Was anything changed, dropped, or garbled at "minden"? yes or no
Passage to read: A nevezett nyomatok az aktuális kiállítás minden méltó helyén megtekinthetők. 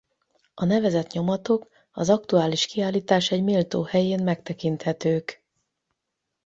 yes